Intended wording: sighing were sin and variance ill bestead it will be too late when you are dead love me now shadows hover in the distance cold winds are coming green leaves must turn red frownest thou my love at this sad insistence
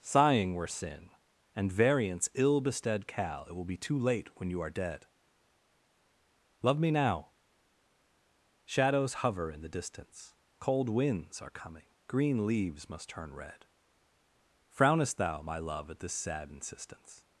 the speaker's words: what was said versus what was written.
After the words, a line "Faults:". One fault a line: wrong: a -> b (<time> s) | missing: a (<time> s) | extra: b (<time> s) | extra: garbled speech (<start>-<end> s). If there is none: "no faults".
sighing were sin and variance ill bestead cal it will be too late when you are dead love me now shadows hover in the distance cold winds are coming green leaves must turn red frownest thou my love at this sad insistence
Faults:
extra: cal (3.1 s)